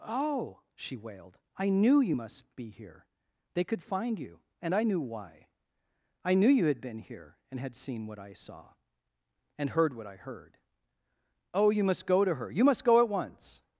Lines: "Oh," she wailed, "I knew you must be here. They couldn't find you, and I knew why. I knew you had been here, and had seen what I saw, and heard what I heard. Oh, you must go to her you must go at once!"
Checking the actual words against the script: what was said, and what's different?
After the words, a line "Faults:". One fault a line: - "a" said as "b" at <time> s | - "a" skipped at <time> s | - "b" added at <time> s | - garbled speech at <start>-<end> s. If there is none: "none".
"Oh," she wailed, "I knew you must be here. They could find you, and I knew why. I knew you had been here, and had seen what I saw, and heard what I heard. Oh, you must go to her you must go at once!"
Faults:
- "couldn't" said as "could" at 3.6 s